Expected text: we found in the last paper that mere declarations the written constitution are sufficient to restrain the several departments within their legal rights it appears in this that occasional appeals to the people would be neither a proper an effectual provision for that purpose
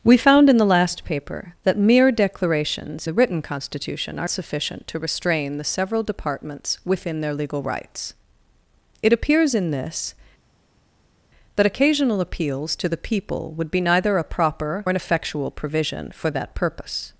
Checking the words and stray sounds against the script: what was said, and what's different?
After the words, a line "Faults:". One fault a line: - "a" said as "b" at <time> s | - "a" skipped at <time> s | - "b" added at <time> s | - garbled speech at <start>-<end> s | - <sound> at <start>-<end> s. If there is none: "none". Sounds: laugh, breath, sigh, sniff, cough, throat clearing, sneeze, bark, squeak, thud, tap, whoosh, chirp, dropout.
we found in the last paper that mere declarations the written constitution are sufficient to restrain the several departments within their legal rights it appears in this that occasional appeals to the people would be neither a proper an effectual provision for that purpose
Faults:
none